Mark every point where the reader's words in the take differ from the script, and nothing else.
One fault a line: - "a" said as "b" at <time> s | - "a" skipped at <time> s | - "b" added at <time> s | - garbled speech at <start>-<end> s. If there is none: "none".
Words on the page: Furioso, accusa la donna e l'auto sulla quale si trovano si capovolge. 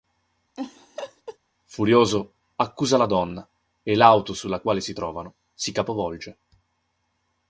none